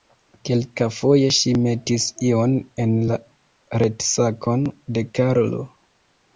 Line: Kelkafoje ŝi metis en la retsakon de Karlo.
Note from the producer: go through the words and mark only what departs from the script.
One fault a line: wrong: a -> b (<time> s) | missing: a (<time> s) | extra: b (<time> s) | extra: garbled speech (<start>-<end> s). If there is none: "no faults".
extra: ion (2.3 s)